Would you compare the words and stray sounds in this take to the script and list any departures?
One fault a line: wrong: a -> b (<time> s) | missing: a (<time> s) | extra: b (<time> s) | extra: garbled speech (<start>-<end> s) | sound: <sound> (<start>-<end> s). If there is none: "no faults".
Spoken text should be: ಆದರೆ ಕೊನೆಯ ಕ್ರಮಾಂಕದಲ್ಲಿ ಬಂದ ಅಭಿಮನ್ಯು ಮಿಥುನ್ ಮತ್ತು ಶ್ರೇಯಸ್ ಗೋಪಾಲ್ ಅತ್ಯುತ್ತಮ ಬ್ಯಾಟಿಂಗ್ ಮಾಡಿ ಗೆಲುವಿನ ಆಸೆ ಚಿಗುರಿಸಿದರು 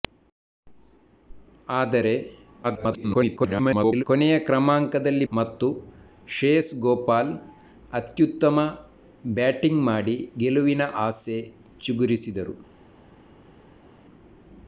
extra: garbled speech (2.6-4.0 s)
missing: ಬಂದ ಅಭಿಮನ್ಯು ಮಿಥುನ್ (5.3 s)